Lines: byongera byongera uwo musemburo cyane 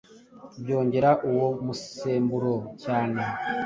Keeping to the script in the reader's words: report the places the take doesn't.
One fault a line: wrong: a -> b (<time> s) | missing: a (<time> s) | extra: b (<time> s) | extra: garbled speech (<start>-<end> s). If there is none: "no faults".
missing: byongera (1.1 s)